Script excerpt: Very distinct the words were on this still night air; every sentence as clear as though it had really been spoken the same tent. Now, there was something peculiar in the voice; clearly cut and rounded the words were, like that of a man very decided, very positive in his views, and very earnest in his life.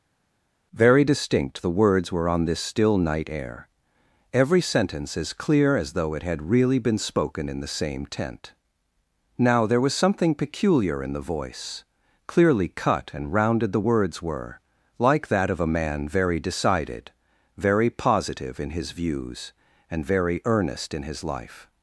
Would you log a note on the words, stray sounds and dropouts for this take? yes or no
yes